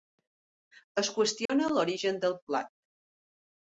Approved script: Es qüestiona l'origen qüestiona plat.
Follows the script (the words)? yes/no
no